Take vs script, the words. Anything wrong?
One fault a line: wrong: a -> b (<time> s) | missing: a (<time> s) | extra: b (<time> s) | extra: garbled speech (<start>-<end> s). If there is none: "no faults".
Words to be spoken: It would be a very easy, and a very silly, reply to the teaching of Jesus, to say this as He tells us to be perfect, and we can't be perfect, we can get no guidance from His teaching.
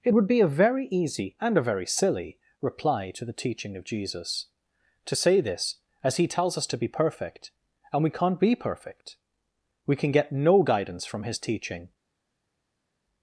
no faults